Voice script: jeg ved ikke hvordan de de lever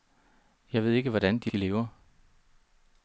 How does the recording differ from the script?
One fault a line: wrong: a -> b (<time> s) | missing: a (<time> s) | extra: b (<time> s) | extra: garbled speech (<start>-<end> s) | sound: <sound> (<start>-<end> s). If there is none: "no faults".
no faults